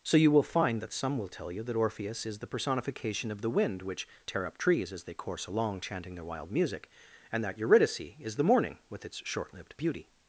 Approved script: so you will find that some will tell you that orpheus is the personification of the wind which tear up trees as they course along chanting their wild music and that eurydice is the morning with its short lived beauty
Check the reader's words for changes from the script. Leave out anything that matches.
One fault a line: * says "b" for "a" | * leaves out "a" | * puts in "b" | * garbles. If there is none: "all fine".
all fine